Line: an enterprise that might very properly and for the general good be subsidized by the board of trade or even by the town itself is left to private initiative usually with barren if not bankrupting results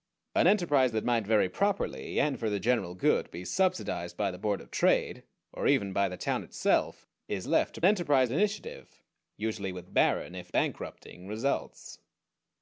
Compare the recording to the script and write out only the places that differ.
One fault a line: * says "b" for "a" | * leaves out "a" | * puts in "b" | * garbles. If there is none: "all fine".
* says "enterprise" for "private"
* leaves out "not"